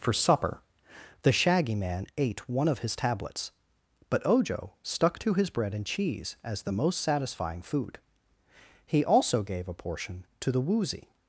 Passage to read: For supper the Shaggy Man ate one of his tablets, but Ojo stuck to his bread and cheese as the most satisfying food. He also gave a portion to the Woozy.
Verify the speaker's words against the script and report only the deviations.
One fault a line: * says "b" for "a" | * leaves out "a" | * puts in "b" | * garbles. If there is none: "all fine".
all fine